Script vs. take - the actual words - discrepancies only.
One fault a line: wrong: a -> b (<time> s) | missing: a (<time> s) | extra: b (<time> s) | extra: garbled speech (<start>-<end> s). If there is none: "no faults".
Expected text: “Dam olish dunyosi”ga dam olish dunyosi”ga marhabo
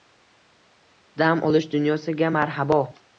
missing: dam olish dunyosi”ga (2.3 s)